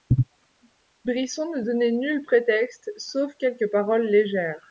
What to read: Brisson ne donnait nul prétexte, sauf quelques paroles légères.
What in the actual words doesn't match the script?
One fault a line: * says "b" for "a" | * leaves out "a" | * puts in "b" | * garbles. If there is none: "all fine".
all fine